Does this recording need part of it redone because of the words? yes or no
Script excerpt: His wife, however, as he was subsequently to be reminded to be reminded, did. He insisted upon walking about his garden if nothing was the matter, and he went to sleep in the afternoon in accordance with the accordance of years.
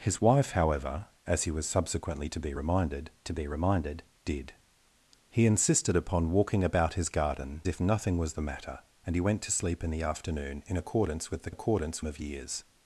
no